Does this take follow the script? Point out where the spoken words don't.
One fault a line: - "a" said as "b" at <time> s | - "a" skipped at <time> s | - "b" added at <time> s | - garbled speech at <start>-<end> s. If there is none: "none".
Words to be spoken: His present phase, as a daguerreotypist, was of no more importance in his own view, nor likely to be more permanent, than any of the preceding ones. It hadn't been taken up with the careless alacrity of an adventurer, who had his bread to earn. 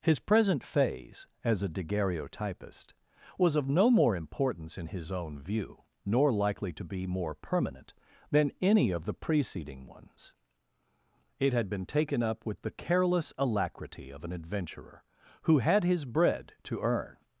- "hadn't" said as "had" at 11.5 s